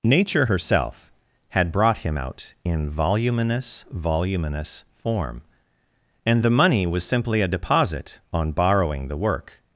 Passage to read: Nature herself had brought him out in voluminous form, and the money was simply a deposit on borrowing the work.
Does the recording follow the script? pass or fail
fail